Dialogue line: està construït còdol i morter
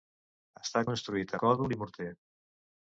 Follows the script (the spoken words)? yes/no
yes